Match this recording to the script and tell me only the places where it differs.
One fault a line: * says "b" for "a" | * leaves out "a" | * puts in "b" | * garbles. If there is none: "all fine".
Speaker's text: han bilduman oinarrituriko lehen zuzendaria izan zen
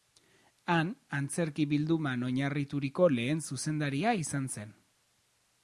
* puts in "antzerki"